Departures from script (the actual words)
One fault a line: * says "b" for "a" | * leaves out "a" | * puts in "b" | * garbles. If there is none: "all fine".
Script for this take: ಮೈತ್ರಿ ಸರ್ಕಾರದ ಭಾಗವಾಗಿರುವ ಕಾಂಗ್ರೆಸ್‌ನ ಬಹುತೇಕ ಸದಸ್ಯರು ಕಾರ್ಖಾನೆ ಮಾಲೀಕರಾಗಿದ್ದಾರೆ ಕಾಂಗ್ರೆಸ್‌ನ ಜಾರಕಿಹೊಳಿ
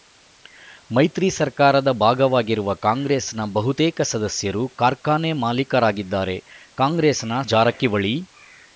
all fine